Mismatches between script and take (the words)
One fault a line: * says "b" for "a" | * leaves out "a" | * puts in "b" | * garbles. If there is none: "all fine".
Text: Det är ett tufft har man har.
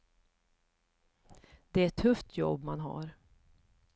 * says "jobb" for "har"